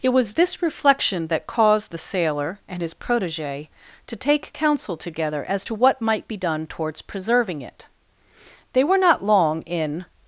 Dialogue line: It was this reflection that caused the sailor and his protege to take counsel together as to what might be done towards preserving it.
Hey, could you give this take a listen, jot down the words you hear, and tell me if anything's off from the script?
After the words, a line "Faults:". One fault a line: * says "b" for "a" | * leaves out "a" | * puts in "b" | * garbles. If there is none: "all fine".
It was this reflection that caused the sailor and his protege to take counsel together as to what might be done towards preserving it. They were not long in
Faults:
* puts in "They were not long in"